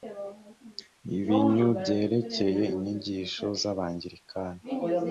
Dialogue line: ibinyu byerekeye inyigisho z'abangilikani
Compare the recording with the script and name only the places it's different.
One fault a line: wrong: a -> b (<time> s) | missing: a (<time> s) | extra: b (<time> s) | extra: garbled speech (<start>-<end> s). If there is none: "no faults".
no faults